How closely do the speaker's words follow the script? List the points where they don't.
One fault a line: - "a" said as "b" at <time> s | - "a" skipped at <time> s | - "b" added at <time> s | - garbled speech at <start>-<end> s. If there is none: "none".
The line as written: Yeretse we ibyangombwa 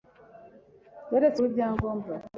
none